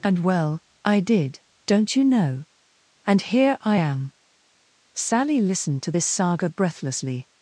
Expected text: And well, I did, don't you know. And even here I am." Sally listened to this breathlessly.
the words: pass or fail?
fail